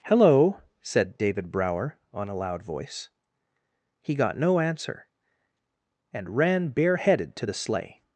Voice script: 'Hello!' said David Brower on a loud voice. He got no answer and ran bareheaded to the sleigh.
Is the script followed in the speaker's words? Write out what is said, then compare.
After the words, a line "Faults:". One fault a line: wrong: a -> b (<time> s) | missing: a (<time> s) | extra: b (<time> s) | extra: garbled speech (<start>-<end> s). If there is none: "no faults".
'Hello!' said David Brower on a loud voice. He got no answer and ran bareheaded to the sleigh.
Faults:
no faults